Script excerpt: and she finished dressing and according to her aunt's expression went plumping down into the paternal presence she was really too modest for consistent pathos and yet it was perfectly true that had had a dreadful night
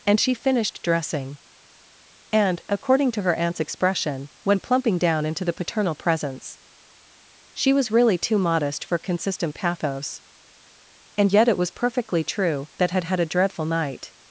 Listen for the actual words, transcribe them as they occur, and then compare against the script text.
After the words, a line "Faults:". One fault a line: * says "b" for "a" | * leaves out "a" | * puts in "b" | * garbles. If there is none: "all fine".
and she finished dressing and according to her aunt's expression went plumping down into the paternal presence she was really too modest for consistent pathos and yet it was perfectly true that had had a dreadful night
Faults:
all fine